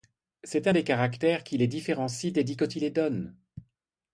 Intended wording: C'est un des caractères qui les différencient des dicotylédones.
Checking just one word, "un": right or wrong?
right